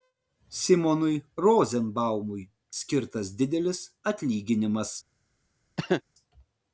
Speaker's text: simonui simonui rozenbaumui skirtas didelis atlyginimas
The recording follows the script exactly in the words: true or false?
false